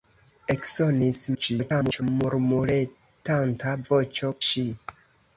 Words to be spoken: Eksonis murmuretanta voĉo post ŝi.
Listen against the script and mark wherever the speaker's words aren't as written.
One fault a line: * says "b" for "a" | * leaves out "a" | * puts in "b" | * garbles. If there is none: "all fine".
* garbles
* leaves out "post"